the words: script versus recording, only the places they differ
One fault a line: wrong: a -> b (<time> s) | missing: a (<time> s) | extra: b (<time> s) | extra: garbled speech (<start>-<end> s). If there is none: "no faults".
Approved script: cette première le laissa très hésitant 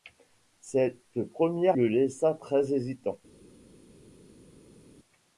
no faults